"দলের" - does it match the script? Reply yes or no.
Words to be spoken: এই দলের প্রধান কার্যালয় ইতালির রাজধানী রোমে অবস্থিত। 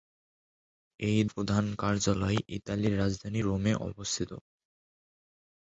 no